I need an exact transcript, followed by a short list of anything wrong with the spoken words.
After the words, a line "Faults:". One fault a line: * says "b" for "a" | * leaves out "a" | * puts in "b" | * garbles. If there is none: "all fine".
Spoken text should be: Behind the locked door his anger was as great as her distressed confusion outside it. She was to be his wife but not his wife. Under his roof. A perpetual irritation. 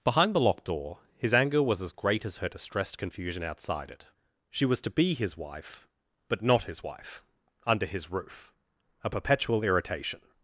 Behind the locked door his anger was as great as her distressed confusion outside it. She was to be his wife but not his wife. Under his roof. A perpetual irritation.
Faults:
all fine